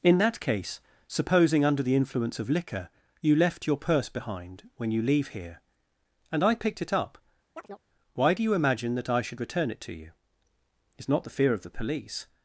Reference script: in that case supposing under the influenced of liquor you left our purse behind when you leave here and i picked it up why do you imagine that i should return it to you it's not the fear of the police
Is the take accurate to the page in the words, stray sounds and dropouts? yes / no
no